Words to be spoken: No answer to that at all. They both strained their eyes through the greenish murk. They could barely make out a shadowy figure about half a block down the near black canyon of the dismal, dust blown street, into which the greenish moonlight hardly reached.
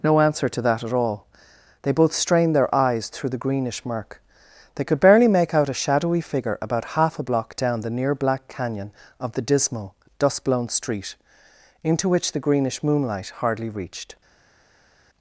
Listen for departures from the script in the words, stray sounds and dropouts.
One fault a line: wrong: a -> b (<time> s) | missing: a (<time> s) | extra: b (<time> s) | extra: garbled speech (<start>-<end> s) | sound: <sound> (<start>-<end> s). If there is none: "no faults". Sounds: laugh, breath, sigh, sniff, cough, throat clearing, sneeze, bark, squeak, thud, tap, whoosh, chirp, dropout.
no faults